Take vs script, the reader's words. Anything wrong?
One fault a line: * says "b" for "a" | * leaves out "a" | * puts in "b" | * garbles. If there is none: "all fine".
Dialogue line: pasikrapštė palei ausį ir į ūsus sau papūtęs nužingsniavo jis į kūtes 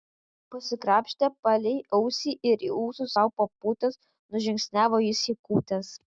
all fine